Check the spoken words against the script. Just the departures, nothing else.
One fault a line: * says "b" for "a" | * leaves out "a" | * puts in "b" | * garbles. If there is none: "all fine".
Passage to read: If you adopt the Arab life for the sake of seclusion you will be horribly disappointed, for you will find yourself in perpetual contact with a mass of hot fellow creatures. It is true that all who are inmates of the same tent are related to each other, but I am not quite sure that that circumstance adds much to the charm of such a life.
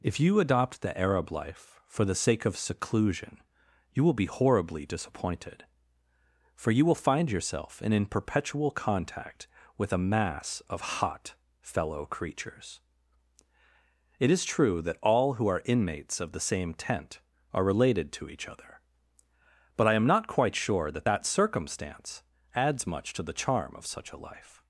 * puts in "in"